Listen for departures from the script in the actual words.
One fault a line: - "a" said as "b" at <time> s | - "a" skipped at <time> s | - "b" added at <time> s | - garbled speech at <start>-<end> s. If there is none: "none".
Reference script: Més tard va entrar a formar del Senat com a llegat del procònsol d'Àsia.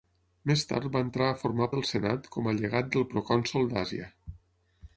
none